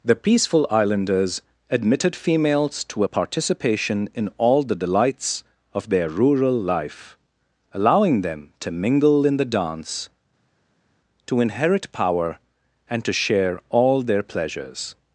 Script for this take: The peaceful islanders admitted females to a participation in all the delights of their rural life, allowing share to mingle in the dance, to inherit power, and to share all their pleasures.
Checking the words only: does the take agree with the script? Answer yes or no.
no